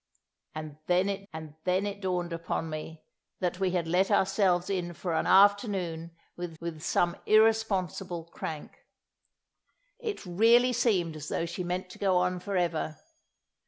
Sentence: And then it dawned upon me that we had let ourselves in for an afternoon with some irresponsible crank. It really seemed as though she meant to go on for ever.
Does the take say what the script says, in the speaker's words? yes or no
no